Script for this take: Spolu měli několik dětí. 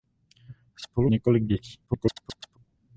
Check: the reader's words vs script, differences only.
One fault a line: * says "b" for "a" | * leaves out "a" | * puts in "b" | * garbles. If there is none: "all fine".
* leaves out "měli"
* garbles